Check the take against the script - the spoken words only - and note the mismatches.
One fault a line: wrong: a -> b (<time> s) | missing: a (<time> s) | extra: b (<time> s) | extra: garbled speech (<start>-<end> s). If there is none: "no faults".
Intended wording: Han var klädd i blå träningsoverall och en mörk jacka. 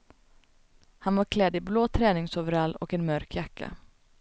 no faults